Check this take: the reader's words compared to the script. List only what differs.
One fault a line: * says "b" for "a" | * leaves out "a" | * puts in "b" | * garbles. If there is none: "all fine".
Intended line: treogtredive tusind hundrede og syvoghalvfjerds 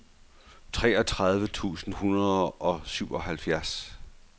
all fine